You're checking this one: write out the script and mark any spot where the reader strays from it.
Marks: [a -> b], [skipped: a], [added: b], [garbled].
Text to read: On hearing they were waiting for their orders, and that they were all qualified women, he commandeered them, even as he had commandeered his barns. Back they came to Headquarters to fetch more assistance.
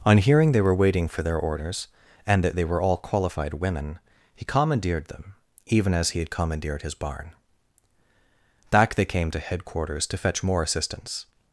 On hearing they were waiting for their orders, and that they were all qualified women, he commandeered them, even as he had commandeered his [barns. -> barn] Back they came to Headquarters to fetch more assistance.